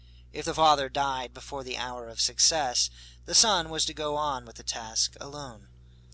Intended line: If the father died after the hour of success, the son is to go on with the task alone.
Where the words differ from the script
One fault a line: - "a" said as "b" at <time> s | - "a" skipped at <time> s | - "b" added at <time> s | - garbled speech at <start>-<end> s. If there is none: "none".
- "after" said as "before" at 1.3 s
- "is" said as "was" at 3.7 s